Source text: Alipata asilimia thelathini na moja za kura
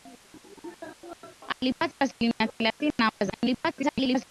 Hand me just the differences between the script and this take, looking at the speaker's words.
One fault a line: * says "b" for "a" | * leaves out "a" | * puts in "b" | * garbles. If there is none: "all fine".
* leaves out "moja"
* garbles